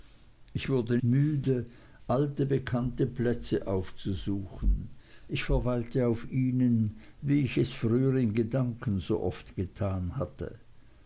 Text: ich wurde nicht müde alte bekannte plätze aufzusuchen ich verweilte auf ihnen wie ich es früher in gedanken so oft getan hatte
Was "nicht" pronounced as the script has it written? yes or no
no